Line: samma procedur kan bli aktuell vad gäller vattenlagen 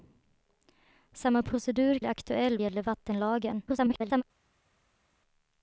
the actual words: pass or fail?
fail